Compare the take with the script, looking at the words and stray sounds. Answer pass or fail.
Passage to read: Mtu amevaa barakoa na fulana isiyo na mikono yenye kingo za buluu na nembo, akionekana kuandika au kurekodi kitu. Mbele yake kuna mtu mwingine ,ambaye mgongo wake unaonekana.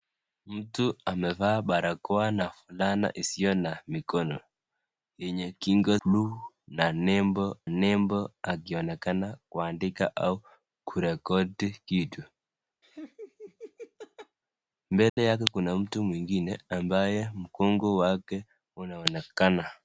fail